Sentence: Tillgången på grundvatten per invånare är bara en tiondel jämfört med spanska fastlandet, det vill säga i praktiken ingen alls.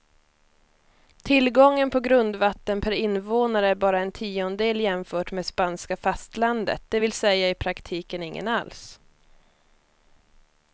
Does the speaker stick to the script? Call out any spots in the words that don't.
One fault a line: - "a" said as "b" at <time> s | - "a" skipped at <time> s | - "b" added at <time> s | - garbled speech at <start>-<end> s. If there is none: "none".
none